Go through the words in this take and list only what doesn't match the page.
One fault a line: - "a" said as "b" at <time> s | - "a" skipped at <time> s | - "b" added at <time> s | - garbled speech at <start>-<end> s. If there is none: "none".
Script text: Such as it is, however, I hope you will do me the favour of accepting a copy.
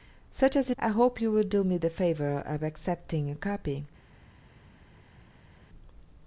- "it is however" skipped at 0.7 s